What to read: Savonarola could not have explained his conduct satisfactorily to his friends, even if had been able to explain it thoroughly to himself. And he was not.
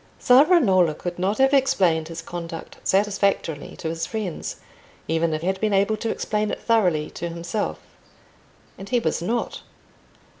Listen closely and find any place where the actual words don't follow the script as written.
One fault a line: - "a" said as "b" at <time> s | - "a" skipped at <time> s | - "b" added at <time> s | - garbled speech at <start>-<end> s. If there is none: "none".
none